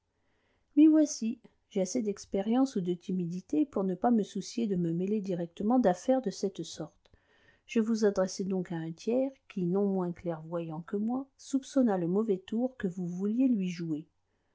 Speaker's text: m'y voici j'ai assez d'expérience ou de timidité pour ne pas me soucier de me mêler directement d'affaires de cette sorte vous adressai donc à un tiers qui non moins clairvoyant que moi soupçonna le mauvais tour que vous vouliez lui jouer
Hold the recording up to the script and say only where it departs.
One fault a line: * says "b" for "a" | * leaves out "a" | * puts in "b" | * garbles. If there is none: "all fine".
* puts in "je"